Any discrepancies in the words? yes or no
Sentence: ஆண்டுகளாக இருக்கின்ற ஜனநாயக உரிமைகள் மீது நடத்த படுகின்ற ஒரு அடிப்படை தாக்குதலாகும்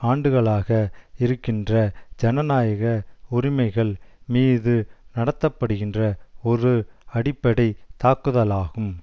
no